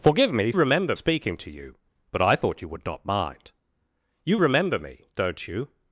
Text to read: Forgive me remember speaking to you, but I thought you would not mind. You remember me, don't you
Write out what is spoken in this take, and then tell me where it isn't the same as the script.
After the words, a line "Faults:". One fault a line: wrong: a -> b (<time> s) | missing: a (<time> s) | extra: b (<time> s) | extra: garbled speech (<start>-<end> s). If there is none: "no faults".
Forgive me remember speaking to you, but I thought you would not mind. You remember me, don't you
Faults:
no faults